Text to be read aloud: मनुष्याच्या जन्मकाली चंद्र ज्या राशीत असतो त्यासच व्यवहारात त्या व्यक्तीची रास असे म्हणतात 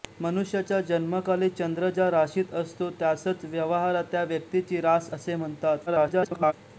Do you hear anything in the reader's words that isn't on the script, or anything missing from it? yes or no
yes